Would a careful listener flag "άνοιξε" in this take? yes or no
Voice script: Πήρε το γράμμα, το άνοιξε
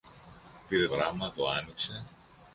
no